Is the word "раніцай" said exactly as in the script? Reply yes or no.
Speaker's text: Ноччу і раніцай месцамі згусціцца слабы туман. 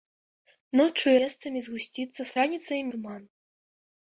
no